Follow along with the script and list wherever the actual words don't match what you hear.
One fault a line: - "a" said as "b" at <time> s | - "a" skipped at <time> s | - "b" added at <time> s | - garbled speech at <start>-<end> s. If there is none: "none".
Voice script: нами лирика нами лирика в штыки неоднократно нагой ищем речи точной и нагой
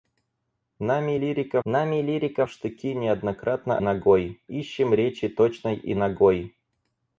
none